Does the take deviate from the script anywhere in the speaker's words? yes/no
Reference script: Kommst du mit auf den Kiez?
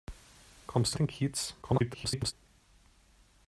yes